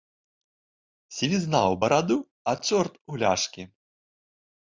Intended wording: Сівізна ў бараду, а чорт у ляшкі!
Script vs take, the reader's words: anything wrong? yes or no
no